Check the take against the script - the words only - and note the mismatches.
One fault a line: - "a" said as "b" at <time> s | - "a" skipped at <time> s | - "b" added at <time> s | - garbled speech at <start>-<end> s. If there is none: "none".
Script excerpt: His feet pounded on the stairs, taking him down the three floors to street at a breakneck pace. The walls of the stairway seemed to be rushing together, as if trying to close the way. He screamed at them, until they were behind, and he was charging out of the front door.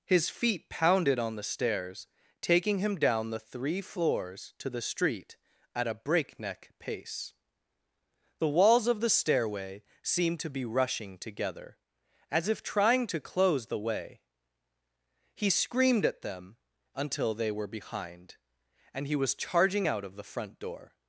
- "the" added at 4.7 s